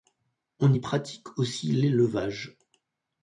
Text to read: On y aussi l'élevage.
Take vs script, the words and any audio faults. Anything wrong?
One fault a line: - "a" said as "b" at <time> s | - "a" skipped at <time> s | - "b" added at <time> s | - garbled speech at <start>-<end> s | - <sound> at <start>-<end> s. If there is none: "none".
- "pratique" added at 0.8 s